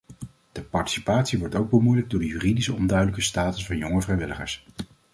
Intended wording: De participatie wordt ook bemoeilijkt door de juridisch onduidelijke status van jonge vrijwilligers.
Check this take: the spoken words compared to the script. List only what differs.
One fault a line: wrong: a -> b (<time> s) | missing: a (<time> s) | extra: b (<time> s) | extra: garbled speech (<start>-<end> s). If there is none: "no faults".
no faults